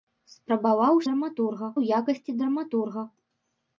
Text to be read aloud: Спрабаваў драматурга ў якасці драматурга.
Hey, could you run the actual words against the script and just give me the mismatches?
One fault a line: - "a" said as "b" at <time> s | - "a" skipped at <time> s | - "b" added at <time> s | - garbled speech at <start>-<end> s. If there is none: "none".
none